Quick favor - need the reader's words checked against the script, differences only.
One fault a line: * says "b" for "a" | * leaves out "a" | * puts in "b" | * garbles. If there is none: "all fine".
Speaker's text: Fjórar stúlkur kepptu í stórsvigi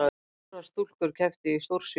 all fine